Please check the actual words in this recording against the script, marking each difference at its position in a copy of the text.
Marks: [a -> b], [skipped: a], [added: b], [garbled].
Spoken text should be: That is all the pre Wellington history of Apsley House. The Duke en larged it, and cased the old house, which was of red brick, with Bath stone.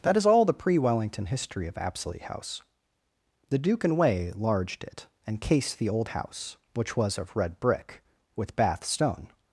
That is all the pre Wellington history of Apsley House. The Duke [en -> and way] larged it, and cased the old house, which was of red brick, with Bath stone.